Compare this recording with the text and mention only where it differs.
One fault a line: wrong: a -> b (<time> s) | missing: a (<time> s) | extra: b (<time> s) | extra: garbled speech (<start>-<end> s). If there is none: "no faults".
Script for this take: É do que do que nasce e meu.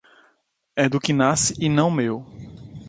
missing: do que (1.1 s)
extra: não (1.7 s)